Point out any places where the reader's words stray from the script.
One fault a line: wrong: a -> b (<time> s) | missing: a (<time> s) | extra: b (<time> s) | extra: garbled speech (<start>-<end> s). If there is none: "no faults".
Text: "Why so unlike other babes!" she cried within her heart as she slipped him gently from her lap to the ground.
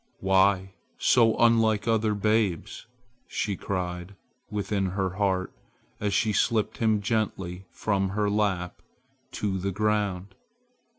no faults